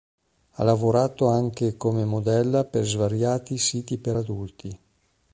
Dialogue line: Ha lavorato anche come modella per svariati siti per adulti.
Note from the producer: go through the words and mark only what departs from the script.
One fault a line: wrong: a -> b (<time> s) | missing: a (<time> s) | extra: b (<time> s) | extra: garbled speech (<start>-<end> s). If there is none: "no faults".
no faults